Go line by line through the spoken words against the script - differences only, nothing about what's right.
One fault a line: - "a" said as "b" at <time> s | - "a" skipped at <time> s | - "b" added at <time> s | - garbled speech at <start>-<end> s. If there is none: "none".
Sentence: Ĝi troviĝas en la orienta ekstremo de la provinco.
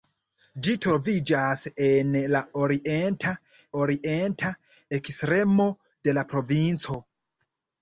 - "orienta" added at 3.8 s